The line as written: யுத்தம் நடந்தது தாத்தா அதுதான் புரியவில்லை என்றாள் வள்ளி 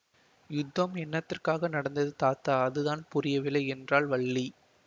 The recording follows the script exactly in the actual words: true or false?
false